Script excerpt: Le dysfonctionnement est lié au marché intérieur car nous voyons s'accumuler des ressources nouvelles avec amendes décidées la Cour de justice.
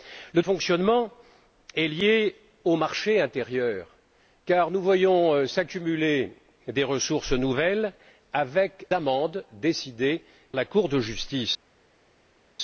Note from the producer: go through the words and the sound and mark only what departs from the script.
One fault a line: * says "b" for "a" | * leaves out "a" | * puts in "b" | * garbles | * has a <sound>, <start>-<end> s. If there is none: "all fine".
all fine